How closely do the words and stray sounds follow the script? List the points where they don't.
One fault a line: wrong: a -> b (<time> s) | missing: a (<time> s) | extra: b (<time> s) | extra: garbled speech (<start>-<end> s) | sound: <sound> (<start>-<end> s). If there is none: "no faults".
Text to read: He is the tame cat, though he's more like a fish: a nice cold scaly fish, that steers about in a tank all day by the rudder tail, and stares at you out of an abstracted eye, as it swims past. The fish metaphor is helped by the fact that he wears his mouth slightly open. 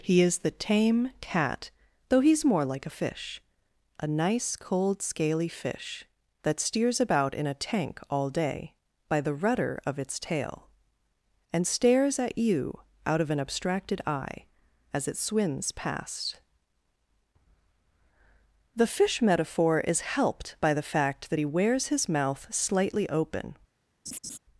extra: of its (9.8 s)
sound: laugh (24.1-24.4 s)